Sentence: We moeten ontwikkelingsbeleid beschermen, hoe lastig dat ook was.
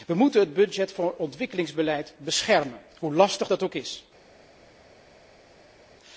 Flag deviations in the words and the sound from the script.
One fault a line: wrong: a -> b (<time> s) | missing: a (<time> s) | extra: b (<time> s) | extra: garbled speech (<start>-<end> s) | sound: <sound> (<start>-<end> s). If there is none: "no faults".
extra: het budget voor (0.4 s)
wrong: was -> is (3.7 s)